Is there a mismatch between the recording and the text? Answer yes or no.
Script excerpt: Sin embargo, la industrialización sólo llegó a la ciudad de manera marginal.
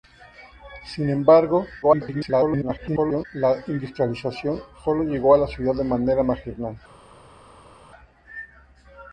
yes